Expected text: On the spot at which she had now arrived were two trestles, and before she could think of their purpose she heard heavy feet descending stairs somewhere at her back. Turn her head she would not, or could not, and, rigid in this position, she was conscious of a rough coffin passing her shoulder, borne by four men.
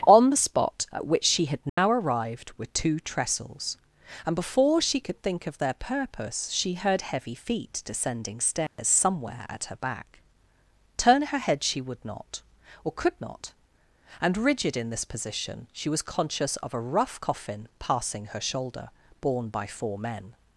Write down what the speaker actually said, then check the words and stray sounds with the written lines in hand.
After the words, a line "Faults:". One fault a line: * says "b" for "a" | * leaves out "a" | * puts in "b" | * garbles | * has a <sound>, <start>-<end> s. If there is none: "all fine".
On the spot at which she had now arrived were two trestles, and before she could think of their purpose she heard heavy feet descending stairs somewhere at her back. Turn her head she would not, or could not, and, rigid in this position, she was conscious of a rough coffin passing her shoulder, borne by four men.
Faults:
* has a dropout, 1.7-1.8 s
* has a dropout, 8.7-8.8 s